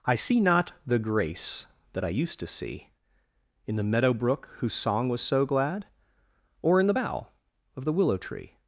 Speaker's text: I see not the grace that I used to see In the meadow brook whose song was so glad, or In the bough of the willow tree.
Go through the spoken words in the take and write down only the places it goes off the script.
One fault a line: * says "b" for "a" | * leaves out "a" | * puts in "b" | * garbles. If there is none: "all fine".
all fine